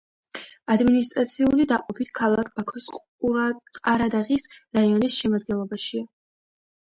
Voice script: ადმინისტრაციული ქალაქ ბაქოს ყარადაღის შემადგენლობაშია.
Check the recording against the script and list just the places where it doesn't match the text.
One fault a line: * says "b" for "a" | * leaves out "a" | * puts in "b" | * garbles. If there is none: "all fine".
* puts in "დაყოფით"
* puts in "რაიონის"